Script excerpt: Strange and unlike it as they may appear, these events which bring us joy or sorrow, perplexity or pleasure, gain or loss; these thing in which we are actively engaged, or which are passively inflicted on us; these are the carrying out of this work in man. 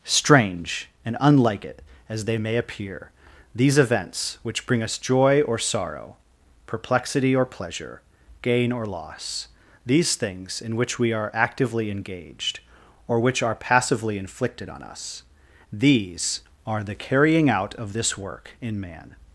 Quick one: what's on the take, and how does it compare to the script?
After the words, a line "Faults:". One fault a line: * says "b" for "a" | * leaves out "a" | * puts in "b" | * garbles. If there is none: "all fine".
Strange and unlike it as they may appear, these events which bring us joy or sorrow, perplexity or pleasure, gain or loss; these things in which we are actively engaged, or which are passively inflicted on us; these are the carrying out of this work in man.
Faults:
* says "things" for "thing"